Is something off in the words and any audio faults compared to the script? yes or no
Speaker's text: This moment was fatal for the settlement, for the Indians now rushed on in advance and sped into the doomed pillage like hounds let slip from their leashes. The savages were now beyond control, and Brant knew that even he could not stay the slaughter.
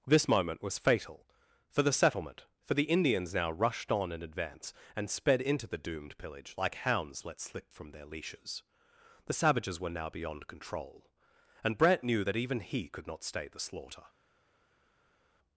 no